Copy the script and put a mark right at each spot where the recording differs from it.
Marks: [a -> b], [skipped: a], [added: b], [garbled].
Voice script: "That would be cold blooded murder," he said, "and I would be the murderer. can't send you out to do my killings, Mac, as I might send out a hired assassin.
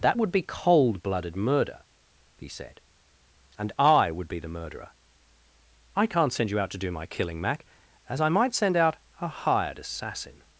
"That would be cold blooded murder," he said, "and I would be the murderer. [added: I] can't send you out to do my [killings, -> killing] Mac, as I might send out a hired assassin.